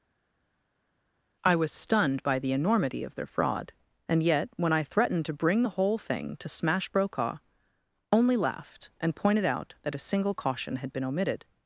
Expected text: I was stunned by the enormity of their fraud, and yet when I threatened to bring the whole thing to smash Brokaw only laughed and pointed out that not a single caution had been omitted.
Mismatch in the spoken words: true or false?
true